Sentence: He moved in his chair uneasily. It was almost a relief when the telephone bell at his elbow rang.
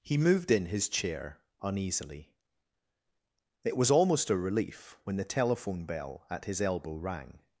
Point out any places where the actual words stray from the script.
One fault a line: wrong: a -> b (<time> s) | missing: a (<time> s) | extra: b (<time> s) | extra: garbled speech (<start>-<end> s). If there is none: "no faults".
no faults